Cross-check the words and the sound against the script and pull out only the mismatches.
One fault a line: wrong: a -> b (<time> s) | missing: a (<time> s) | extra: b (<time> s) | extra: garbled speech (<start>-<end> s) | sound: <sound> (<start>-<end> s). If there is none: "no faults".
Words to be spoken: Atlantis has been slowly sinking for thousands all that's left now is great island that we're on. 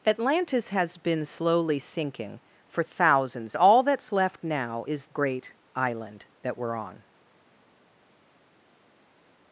no faults